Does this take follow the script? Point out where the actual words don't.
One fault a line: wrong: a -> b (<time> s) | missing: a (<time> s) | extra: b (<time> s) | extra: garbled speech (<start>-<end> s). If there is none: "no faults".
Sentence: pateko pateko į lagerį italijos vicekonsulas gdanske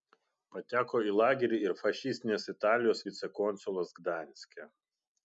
missing: pateko (1.0 s)
extra: ir fašistinės (1.6 s)